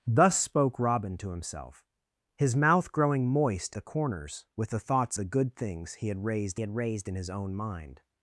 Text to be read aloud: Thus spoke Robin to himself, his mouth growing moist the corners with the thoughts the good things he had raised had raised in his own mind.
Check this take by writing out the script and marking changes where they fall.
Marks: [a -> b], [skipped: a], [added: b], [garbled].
Thus spoke Robin to himself, his mouth growing moist the corners with the thoughts the good things he had raised had raised in his own mind.